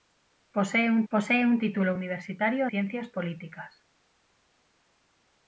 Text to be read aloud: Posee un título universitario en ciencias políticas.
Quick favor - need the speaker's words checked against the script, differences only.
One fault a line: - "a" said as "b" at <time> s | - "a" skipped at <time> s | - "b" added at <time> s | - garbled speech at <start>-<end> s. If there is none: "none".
- "posee un" added at 1.1 s
- "en" skipped at 2.7 s